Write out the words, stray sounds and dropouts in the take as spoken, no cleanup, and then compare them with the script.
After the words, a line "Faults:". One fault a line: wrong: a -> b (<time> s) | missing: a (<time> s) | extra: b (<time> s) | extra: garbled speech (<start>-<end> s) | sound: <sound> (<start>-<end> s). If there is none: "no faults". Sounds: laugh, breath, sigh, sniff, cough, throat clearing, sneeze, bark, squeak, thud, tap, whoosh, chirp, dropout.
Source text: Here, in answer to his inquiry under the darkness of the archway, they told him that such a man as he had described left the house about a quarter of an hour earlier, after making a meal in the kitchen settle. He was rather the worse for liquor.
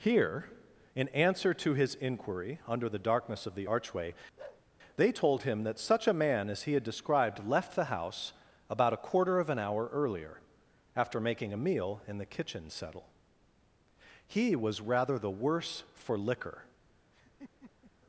Here, in answer to his inquiry under the darkness of the archway, they told him that such a man as he had described left the house about a quarter of an hour earlier, after making a meal in the kitchen settle. He was rather the worse for liquor.
Faults:
sound: bark (4.4-4.7 s)
sound: laugh (17.1-17.9 s)